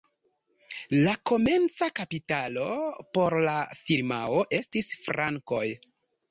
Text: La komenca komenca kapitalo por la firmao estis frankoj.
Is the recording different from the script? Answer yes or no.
yes